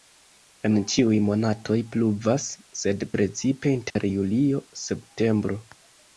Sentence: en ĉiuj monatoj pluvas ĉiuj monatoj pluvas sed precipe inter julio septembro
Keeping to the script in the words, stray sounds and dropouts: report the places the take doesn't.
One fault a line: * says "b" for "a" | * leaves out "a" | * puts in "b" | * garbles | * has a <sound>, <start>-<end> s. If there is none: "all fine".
* leaves out "ĉiuj monatoj pluvas"
* has a dropout, 3.9-4.0 s